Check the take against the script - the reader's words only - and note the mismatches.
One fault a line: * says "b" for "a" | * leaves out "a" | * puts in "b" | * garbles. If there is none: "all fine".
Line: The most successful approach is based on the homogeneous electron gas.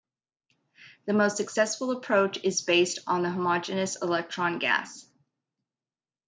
all fine